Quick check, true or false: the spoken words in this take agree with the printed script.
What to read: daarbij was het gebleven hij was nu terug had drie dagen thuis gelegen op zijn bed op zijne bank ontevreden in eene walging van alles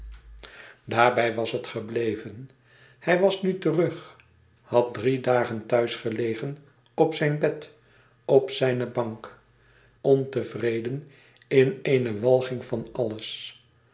true